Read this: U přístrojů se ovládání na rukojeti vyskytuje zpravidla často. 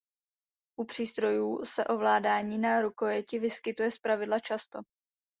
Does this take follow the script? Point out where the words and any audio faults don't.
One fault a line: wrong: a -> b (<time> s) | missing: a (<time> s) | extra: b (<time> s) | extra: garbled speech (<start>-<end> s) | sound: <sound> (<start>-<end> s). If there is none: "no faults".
no faults